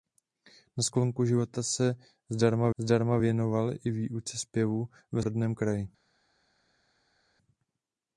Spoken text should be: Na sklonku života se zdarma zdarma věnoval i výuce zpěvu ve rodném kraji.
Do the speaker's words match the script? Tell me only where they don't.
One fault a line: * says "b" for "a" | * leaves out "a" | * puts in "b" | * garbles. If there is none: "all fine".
all fine